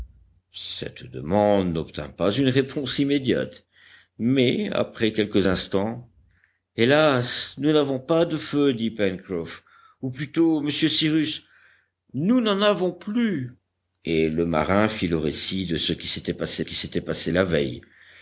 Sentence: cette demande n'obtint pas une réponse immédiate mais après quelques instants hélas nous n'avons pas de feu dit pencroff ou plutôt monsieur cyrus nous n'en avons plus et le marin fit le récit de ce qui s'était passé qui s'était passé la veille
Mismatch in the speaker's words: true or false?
false